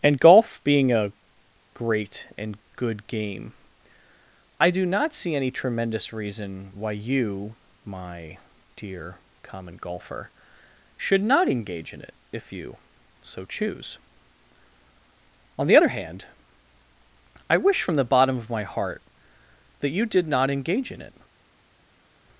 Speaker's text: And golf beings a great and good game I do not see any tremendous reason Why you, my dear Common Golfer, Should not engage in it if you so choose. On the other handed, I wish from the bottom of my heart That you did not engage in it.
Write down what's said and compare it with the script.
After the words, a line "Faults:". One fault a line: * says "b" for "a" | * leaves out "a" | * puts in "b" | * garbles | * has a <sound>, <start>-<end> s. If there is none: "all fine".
And golf being a great and good game I do not see any tremendous reason Why you, my dear Common Golfer, Should not engage in it if you so choose. On the other hand, I wish from the bottom of my heart That you did not engage in it.
Faults:
* says "being" for "beings"
* says "hand" for "handed"